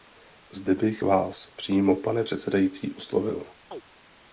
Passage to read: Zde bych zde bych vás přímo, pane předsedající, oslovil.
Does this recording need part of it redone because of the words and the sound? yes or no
yes